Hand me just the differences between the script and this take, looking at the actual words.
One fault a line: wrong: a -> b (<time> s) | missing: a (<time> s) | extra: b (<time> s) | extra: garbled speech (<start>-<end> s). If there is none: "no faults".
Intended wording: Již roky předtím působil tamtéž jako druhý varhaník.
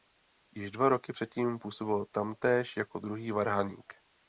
extra: dva (0.7 s)